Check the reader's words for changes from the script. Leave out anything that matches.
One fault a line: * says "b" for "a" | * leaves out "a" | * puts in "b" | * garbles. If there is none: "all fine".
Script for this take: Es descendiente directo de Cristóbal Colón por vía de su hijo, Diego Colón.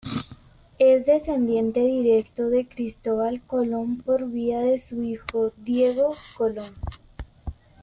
all fine